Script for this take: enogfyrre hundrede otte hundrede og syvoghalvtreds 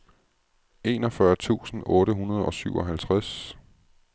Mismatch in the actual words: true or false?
true